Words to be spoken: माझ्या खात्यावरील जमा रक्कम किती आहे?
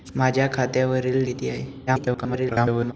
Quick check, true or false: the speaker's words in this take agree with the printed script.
false